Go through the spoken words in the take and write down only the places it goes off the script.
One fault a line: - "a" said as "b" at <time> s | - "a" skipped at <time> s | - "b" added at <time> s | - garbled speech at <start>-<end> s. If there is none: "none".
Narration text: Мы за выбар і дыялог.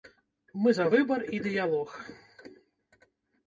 none